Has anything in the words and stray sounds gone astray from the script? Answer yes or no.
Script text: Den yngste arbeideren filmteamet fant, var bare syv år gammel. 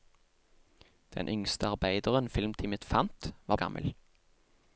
yes